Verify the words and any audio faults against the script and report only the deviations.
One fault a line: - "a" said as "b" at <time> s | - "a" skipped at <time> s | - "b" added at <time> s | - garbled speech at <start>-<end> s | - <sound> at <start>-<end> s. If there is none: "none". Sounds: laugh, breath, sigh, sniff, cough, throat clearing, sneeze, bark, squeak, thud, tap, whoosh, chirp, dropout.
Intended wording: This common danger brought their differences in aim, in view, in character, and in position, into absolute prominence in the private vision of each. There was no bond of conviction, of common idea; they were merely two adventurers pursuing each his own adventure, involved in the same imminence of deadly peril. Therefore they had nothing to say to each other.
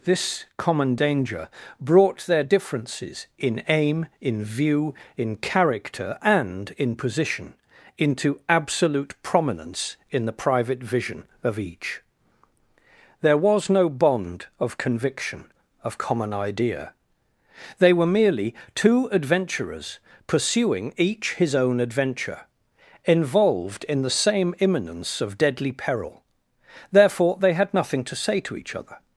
none